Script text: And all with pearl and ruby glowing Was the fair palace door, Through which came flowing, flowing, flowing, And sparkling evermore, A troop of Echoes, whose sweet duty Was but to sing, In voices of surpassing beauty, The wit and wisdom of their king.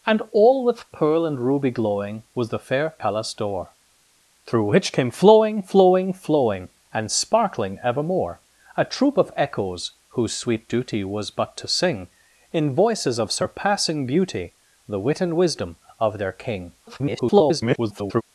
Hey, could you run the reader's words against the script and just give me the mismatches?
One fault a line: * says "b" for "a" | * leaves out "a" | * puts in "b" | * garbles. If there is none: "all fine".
* garbles